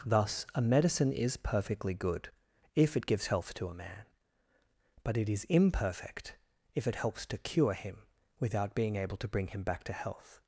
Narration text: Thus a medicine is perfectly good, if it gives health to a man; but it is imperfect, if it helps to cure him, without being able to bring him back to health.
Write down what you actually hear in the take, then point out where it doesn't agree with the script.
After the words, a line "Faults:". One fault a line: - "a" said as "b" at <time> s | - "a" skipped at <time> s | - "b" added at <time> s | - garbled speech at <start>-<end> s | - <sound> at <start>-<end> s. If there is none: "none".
Thus a medicine is perfectly good, if it gives health to a man; but it is imperfect, if it helps to cure him, without being able to bring him back to health.
Faults:
none